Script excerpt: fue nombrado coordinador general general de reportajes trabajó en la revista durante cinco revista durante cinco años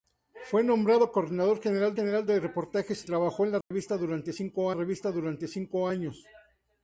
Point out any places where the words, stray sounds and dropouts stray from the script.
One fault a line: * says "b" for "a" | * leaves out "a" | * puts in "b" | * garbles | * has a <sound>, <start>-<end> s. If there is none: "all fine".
* has a dropout, 3.6-3.7 s